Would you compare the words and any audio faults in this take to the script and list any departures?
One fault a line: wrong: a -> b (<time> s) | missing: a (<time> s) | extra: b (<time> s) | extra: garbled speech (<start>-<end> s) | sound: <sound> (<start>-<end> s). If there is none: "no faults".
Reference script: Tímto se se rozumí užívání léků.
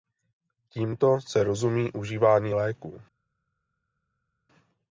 missing: se (1.4 s)